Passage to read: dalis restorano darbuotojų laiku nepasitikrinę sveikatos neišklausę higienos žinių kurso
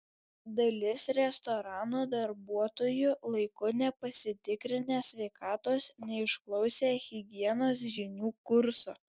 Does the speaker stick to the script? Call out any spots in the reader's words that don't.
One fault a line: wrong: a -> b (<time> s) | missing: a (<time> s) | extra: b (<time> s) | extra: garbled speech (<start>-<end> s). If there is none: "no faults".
no faults